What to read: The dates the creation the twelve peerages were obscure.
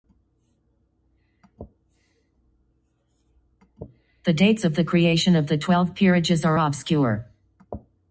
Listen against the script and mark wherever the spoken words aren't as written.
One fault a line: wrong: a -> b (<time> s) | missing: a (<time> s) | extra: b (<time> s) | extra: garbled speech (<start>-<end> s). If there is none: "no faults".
extra: of (4.6 s)
extra: of (5.3 s)
wrong: were -> are (6.5 s)